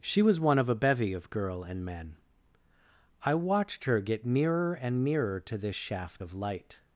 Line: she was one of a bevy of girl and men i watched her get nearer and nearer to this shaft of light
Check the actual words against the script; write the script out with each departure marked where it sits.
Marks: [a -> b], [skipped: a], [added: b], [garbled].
she was one of a bevy of girl and men i watched her get nearer and nearer to this shaft of light